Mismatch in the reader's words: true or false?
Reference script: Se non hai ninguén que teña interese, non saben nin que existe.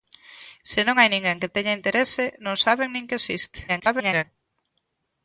true